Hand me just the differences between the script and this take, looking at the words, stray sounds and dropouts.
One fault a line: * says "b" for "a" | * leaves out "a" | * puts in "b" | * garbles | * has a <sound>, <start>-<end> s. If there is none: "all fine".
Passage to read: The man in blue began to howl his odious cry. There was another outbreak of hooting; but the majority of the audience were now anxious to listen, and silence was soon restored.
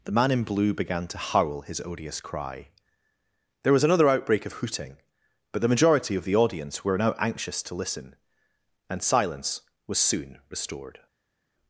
all fine